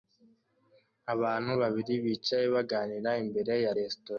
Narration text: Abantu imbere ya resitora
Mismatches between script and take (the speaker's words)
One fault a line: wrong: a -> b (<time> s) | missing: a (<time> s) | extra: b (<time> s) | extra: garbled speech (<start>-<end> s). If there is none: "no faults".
extra: babiri bicaye baganira (1.6 s)